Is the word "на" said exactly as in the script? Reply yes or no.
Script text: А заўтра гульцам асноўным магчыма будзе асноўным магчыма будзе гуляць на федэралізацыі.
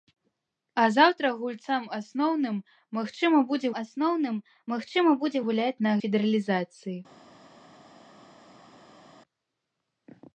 yes